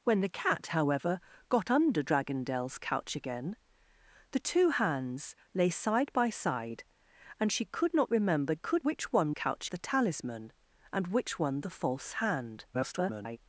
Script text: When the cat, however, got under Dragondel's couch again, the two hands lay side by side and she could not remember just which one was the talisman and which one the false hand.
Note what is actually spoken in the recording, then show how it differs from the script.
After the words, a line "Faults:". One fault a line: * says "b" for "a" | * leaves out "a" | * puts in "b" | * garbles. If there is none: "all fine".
When the cat, however, got under Dragondel's couch again, the two hands lay side by side and she could not remember could which one couch the talisman and which one the false hand. [garbled]
Faults:
* says "could" for "just"
* says "couch" for "was"
* garbles